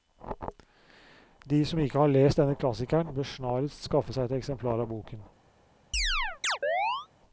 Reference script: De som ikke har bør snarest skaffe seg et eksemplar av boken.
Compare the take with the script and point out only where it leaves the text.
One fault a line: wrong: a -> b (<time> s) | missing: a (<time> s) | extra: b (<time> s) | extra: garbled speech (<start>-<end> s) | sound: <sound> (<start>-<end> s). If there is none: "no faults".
extra: lest denne klassikeren (2.1 s)
sound: chirp (5.9-7.1 s)